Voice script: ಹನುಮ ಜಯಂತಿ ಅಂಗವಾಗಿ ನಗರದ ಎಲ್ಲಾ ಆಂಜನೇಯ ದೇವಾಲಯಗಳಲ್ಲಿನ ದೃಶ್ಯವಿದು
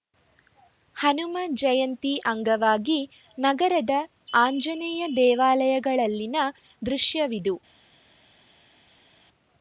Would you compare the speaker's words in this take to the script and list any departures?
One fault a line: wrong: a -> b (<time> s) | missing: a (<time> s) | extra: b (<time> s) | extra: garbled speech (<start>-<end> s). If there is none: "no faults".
missing: ಎಲ್ಲಾ (3.9 s)